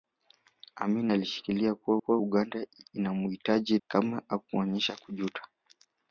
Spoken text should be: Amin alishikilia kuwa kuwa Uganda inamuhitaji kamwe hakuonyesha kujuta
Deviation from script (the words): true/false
false